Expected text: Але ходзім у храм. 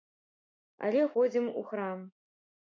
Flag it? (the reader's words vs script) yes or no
no